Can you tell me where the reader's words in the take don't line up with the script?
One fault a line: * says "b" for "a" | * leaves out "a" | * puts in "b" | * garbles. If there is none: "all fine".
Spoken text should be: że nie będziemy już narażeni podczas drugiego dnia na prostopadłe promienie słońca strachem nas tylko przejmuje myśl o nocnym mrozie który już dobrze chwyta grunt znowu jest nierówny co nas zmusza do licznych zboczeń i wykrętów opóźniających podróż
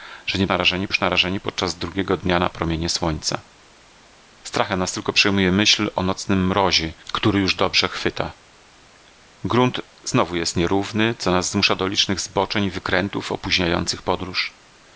* says "narażeni" for "będziemy"
* leaves out "prostopadłe"